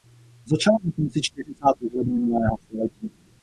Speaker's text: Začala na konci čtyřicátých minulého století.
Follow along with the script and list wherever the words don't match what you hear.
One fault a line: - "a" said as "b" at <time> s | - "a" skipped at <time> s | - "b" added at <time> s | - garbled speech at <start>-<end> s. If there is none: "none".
- "let" added at 1.9 s